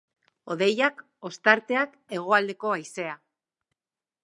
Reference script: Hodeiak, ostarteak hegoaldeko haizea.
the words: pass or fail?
pass